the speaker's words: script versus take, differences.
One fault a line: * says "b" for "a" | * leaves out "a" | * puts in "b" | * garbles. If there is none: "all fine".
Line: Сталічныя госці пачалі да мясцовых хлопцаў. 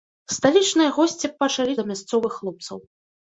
all fine